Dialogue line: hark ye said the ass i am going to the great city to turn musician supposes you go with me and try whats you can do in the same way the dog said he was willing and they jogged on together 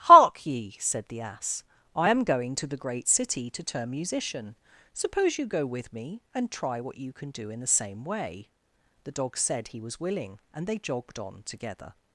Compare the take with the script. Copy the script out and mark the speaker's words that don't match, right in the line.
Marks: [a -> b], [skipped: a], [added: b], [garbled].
hark ye said the ass i am going to the great city to turn musician [supposes -> suppose] you go with me and try [whats -> what] you can do in the same way the dog said he was willing and they jogged on together